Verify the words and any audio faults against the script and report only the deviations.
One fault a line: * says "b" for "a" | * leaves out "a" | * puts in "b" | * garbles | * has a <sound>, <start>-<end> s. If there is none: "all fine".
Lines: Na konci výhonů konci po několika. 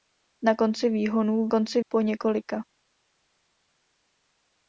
all fine